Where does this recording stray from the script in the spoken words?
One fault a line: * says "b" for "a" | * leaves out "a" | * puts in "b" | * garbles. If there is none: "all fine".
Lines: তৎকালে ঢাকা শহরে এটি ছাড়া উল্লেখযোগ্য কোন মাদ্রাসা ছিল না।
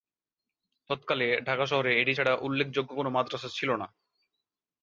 all fine